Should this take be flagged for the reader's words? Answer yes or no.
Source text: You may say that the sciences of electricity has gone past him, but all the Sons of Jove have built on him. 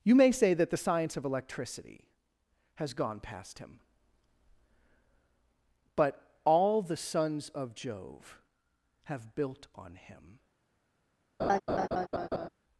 yes